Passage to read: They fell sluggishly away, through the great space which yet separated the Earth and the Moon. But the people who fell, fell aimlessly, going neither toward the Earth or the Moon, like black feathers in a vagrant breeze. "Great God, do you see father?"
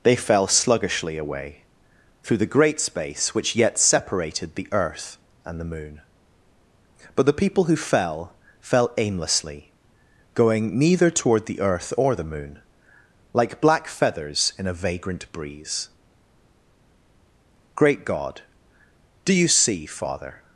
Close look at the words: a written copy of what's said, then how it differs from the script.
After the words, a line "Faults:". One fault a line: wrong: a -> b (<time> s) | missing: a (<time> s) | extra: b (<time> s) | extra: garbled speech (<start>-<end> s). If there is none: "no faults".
They fell sluggishly away, through the great space which yet separated the Earth and the Moon. But the people who fell, fell aimlessly, going neither toward the Earth or the Moon, like black feathers in a vagrant breeze. "Great God, do you see father?"
Faults:
no faults